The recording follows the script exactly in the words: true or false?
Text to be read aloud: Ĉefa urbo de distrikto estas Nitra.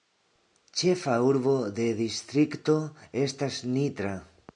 true